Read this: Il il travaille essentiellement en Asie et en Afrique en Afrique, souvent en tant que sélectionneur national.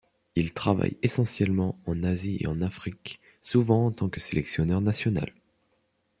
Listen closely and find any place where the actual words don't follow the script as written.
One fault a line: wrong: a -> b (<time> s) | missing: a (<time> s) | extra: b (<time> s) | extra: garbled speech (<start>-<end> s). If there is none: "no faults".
missing: il (0.6 s)
missing: en Afrique (3.2 s)